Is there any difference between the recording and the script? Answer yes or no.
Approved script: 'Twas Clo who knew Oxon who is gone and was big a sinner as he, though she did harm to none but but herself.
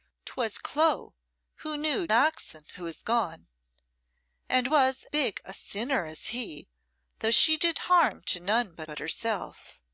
no